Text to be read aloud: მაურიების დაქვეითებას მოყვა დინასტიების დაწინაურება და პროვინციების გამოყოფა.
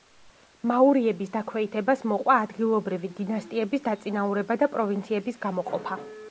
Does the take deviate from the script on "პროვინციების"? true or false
false